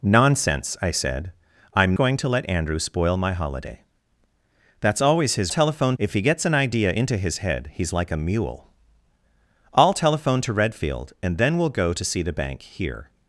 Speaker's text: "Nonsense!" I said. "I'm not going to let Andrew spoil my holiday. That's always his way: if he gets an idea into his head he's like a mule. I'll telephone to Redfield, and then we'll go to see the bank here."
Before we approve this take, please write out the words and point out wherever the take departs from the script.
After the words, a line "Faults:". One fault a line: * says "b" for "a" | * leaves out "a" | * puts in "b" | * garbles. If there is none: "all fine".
"Nonsense!" I said. "I'm going to let Andrew spoil my holiday. That's always his telephone: if he gets an idea into his head he's like a mule. I'll telephone to Redfield, and then we'll go to see the bank here."
Faults:
* leaves out "not"
* says "telephone" for "way"